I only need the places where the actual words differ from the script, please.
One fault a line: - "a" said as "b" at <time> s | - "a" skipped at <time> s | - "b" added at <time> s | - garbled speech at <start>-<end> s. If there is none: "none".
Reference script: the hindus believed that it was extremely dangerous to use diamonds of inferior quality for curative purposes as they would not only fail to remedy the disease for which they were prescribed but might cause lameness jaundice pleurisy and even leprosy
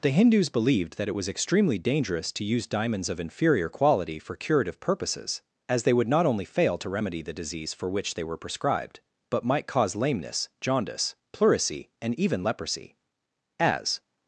- "as" added at 13.6 s